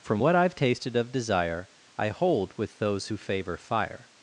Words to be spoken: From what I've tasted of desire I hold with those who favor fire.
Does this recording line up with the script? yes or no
yes